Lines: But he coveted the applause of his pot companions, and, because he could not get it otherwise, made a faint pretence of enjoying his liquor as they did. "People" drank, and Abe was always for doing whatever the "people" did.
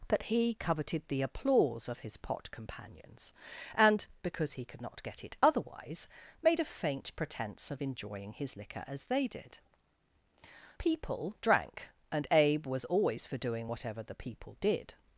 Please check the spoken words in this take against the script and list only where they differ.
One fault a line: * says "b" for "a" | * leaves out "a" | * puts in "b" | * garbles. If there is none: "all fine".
all fine